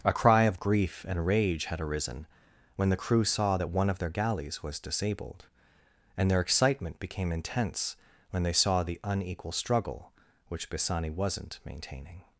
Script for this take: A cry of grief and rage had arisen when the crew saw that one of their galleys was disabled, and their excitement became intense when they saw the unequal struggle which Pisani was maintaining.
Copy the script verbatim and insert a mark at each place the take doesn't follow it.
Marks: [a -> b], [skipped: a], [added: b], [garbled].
A cry of grief and rage had arisen when the crew saw that one of their galleys was disabled, and their excitement became intense when they saw the unequal struggle which Pisani [was -> wasn't] maintaining.